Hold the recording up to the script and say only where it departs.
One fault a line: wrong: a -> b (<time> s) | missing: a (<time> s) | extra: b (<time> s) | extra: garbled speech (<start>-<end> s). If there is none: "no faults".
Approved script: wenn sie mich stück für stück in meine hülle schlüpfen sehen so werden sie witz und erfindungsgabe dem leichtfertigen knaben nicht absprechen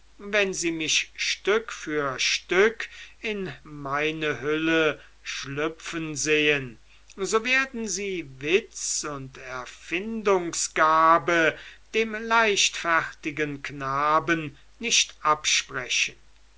no faults